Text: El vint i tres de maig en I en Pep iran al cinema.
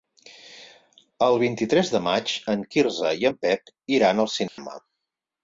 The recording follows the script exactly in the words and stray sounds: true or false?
false